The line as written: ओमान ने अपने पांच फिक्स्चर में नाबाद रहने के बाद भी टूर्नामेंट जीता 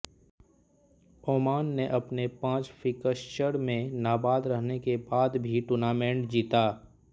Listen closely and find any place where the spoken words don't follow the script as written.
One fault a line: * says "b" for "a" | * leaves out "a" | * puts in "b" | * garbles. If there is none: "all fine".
all fine